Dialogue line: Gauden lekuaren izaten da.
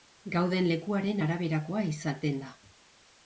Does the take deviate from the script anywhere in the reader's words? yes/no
yes